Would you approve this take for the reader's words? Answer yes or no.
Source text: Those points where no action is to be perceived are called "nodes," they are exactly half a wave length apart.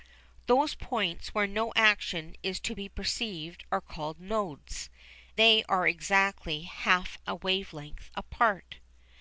yes